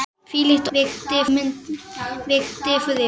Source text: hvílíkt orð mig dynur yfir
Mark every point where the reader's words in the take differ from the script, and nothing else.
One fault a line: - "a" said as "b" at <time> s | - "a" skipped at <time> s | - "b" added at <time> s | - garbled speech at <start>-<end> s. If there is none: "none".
- "orð" said as "dynur" at 0.7 s